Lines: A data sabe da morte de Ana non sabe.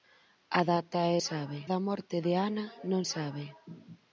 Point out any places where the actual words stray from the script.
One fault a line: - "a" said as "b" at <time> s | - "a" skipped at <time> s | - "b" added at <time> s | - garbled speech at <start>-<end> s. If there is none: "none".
none